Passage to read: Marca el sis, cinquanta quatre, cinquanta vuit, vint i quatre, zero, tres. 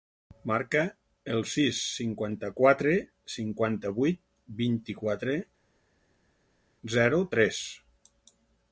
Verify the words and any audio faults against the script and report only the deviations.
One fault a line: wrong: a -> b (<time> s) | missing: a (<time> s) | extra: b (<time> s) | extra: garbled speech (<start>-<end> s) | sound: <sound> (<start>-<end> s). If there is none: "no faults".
no faults